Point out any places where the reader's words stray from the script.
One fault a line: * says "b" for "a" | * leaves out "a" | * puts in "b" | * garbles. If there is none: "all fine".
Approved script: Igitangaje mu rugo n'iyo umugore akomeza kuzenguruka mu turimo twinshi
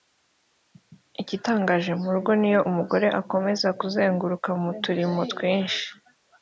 all fine